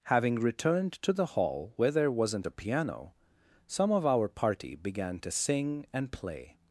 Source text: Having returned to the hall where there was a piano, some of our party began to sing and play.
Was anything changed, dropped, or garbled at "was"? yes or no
yes